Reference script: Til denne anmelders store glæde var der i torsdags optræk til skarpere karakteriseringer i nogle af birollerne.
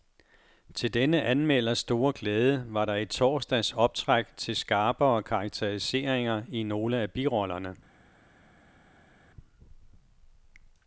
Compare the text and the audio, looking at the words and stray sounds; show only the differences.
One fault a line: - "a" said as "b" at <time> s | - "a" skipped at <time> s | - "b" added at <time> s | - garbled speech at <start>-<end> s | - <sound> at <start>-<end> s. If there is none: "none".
none